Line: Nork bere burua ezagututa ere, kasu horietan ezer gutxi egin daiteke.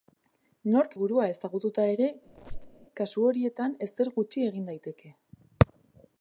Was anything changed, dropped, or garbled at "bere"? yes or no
yes